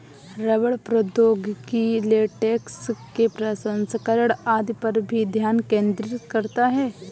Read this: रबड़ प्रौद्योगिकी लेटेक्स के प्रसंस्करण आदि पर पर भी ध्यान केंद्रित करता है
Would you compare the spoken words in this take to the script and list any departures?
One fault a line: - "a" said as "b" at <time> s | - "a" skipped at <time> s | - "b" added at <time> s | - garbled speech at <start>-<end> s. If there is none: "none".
- "पर" skipped at 5.0 s